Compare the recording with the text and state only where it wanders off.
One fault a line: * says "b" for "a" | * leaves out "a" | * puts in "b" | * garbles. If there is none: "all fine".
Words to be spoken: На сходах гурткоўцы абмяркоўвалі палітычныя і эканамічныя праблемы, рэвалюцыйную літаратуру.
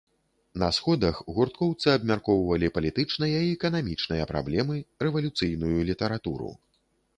all fine